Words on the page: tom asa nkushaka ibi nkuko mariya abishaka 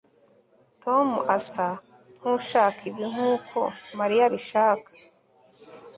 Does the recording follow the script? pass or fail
pass